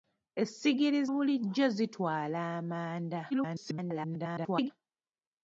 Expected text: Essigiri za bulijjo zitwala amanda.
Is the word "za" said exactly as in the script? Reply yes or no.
no